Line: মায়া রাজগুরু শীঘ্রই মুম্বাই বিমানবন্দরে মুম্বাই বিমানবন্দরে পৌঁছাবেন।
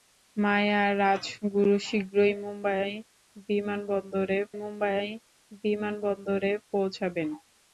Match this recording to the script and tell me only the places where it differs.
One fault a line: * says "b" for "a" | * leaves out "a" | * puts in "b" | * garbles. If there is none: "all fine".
all fine